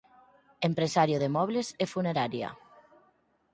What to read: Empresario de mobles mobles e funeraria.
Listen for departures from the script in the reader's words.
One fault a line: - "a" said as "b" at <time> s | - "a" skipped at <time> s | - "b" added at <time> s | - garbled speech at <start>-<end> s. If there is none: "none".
- "mobles" skipped at 1.7 s